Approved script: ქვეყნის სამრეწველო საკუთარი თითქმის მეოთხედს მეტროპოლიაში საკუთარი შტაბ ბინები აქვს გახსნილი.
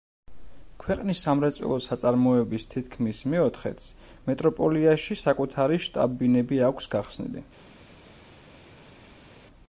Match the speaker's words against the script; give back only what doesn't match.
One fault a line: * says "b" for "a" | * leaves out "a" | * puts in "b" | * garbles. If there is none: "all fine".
* says "საწარმოების" for "საკუთარი"